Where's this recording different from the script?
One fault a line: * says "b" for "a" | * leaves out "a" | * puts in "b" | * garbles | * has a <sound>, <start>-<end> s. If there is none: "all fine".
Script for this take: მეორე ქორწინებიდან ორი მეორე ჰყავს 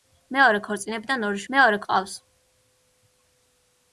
all fine